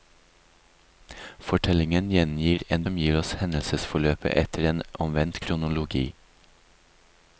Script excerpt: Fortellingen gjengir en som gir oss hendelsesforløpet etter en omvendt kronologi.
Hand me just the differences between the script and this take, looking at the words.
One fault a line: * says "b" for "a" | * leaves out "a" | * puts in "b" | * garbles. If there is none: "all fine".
all fine